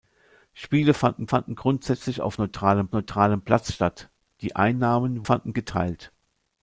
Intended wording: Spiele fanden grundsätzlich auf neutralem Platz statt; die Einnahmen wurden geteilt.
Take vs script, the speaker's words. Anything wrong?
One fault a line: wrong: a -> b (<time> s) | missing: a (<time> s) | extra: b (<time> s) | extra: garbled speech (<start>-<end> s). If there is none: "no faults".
extra: fanden (1.2 s)
extra: neutralem (2.9 s)
wrong: wurden -> fanden (5.2 s)